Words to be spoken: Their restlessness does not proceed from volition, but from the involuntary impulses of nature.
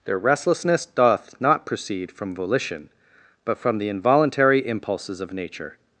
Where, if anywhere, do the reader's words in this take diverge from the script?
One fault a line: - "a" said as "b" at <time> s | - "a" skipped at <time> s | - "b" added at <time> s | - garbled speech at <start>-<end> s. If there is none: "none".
- "does" said as "doth" at 0.8 s